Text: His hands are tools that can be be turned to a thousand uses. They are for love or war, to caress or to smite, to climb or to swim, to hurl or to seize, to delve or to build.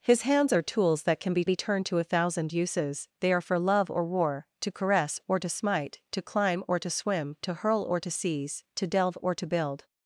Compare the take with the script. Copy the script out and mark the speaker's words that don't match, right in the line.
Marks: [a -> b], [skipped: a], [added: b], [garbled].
His hands are tools that can be be turned to a thousand uses. They are for love or war, to caress or to smite, to climb or to swim, to hurl or to seize, to delve or to build.